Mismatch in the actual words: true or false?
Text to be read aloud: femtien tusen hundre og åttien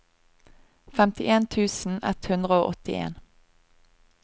true